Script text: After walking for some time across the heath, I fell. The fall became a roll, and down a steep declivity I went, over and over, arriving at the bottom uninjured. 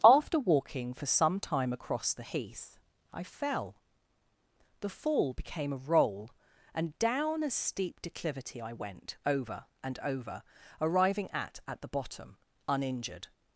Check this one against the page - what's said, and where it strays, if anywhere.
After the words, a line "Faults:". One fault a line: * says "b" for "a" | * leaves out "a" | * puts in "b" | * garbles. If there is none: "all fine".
After walking for some time across the heath, I fell. The fall became a roll, and down a steep declivity I went, over and over, arriving at at the bottom uninjured.
Faults:
* puts in "at"